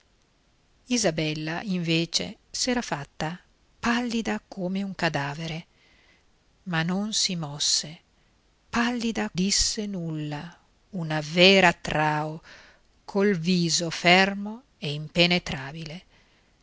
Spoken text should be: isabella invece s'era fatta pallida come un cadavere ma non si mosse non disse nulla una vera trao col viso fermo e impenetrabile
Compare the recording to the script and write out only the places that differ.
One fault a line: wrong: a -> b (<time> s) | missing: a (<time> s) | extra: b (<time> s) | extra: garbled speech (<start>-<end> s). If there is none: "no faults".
wrong: non -> pallida (8.7 s)